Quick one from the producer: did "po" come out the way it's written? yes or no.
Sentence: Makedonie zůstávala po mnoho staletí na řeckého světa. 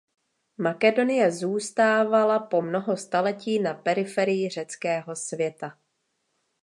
yes